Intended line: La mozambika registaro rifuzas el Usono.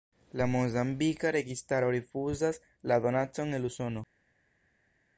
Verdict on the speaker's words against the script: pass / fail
fail